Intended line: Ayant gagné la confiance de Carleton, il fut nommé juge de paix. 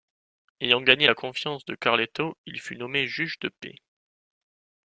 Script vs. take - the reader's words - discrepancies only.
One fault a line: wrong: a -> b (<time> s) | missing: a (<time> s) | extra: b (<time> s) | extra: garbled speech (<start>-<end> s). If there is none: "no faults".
no faults